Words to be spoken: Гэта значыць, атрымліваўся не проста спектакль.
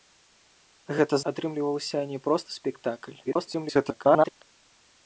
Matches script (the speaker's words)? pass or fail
fail